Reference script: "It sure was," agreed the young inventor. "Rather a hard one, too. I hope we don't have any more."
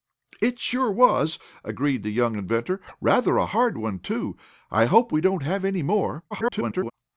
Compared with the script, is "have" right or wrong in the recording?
right